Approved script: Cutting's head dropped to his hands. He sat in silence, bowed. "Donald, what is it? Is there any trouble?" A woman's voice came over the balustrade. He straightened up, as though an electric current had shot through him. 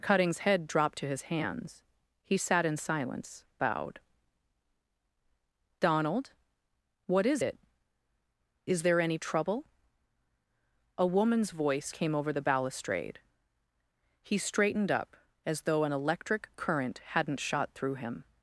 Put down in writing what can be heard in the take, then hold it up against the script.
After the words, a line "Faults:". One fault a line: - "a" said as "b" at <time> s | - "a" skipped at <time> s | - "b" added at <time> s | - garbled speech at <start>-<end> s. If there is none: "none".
Cutting's head dropped to his hands. He sat in silence, bowed. "Donald, what is it? Is there any trouble?" A woman's voice came over the balustrade. He straightened up, as though an electric current hadn't shot through him.
Faults:
- "had" said as "hadn't" at 17.0 s